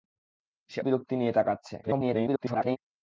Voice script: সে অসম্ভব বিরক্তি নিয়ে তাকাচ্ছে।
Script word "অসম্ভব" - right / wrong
wrong